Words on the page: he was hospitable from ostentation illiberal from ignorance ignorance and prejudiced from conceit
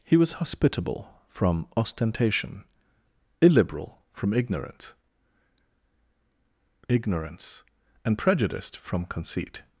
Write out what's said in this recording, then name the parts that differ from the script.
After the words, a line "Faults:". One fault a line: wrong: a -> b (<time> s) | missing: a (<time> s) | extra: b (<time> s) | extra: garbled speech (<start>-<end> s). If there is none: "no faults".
he was hospitable from ostentation illiberal from ignorance ignorance and prejudiced from conceit
Faults:
no faults